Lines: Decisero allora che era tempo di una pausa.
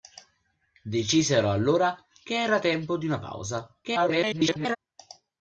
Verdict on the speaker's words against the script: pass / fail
fail